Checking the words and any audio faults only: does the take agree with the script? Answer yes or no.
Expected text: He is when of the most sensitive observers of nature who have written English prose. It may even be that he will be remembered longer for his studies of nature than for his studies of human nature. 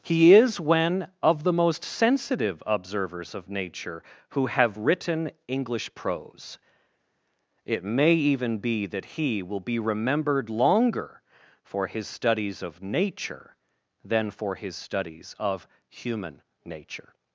yes